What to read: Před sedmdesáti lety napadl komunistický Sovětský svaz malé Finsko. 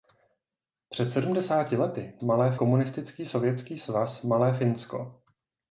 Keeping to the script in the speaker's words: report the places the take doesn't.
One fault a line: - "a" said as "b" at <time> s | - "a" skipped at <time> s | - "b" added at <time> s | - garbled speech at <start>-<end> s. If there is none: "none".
- "napadl" said as "malé" at 2.2 s